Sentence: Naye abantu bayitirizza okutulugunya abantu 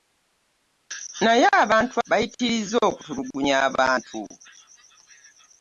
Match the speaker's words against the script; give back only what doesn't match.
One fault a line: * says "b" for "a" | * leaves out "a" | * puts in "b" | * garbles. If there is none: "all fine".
all fine